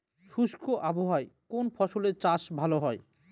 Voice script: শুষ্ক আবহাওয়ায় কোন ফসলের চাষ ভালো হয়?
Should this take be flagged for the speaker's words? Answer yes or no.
no